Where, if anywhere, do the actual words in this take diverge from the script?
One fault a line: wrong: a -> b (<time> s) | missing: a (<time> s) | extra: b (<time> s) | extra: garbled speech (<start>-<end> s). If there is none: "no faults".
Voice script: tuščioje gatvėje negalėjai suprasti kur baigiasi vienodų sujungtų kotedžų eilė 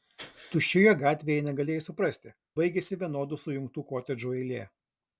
missing: kur (2.3 s)